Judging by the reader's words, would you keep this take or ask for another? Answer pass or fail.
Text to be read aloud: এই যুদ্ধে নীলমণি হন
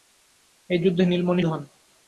pass